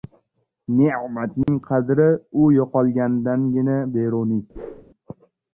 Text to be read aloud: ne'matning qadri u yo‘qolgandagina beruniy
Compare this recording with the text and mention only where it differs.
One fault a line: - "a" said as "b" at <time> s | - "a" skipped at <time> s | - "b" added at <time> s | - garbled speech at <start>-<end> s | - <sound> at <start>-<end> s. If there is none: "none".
- dropout at 1.4-1.5 s
- whoosh at 4.5-4.8 s